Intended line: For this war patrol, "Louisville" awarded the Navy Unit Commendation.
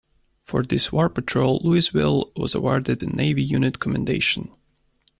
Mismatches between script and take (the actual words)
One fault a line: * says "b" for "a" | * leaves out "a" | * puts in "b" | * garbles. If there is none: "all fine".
* puts in "was"